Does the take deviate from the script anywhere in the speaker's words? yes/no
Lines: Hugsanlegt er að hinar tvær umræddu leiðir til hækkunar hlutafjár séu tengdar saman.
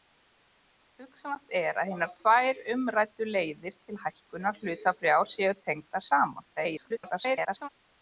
yes